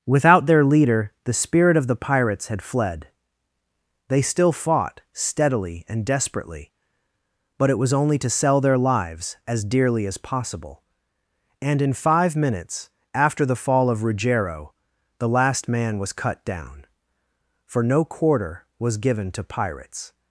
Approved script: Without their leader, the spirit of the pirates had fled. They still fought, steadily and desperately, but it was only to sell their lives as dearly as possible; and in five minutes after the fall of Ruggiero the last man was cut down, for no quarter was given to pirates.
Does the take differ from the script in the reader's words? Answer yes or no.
no